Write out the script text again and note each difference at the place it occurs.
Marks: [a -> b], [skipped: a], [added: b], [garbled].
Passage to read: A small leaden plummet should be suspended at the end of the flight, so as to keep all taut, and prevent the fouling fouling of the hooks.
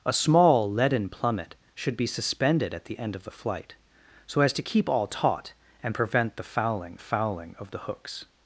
A small leaden plummet should be suspended at the end of the flight, so as to keep all taut, and prevent the fouling fouling of the hooks.